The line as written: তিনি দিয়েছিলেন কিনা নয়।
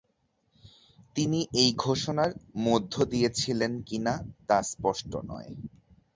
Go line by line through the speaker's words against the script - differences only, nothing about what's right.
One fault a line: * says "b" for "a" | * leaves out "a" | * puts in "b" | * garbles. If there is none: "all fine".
* puts in "এই ঘোষণার মধ্য"
* puts in "তা স্পষ্ট"